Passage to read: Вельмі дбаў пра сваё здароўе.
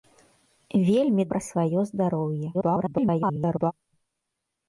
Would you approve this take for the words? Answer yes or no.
no